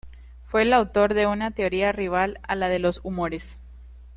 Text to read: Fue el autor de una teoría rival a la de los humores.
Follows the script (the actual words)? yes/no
yes